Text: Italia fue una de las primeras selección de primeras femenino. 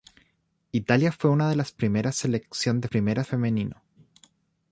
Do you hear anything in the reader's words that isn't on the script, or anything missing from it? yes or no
no